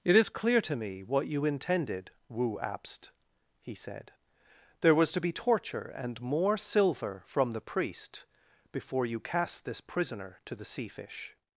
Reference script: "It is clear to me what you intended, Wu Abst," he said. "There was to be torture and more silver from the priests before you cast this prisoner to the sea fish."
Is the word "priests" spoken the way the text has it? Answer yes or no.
no